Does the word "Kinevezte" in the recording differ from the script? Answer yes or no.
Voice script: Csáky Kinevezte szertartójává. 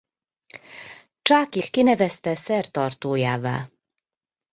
no